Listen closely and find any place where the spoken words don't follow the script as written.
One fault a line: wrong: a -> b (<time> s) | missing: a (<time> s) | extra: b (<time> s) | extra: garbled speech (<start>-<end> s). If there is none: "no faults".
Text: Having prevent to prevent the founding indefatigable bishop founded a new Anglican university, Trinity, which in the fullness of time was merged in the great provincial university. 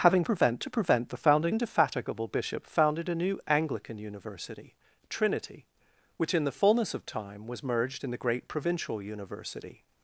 no faults